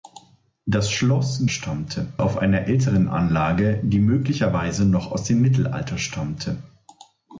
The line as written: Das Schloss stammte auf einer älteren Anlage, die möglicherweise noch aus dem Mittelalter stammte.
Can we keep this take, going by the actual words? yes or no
yes